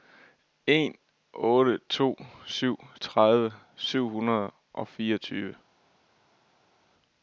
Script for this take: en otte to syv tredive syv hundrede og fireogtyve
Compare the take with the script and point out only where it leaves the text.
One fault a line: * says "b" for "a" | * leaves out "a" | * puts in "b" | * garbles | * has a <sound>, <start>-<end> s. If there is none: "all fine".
all fine